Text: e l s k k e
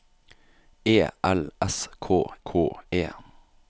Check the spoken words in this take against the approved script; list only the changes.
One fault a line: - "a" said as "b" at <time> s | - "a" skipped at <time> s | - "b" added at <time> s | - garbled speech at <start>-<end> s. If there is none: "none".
none